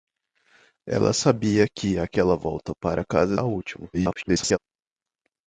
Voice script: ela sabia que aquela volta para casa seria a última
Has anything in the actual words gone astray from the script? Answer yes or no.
yes